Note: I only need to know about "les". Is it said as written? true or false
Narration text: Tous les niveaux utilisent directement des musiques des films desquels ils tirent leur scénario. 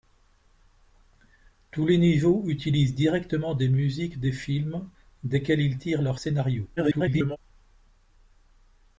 true